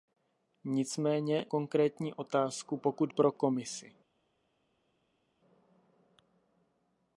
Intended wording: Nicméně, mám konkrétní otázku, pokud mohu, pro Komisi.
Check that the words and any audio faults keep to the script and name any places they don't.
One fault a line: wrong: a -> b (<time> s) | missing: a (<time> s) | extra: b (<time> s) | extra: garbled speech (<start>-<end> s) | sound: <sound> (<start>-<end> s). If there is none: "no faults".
missing: mám (1.4 s)
missing: mohu (3.1 s)